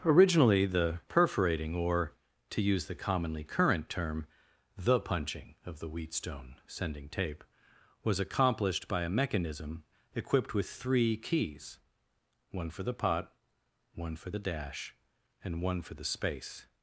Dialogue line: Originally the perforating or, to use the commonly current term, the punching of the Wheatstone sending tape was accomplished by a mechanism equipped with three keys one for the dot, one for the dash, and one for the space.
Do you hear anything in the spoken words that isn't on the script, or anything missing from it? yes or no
yes